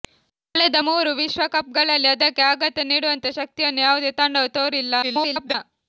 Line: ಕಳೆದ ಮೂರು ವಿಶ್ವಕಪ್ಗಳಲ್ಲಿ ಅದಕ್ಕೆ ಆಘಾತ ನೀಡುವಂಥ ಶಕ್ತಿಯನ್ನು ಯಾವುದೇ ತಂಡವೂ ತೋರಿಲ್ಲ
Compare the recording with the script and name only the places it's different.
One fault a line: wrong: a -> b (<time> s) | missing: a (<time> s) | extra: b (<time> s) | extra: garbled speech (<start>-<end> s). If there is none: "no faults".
extra: garbled speech (5.0-5.5 s)